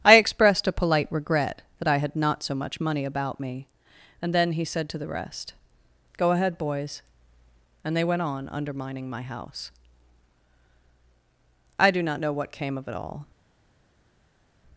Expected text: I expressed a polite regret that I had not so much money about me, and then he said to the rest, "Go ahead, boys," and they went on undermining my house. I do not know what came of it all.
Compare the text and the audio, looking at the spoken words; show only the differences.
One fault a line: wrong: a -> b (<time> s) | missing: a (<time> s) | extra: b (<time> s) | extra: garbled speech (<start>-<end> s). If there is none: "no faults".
no faults